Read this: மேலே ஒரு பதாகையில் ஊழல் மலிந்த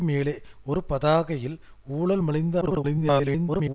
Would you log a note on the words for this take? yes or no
yes